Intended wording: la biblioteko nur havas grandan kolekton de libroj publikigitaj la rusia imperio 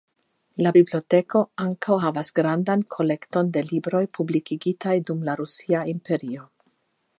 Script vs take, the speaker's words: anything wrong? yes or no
yes